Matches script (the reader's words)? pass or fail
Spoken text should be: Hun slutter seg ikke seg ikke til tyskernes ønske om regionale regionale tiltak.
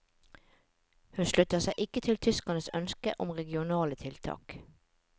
fail